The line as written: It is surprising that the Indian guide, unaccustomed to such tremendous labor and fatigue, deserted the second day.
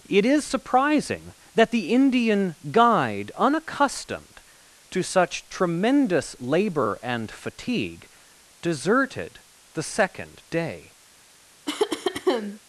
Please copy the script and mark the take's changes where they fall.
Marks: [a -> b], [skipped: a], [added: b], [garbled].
It is surprising that the Indian guide, unaccustomed to such tremendous labor and fatigue, deserted the second day.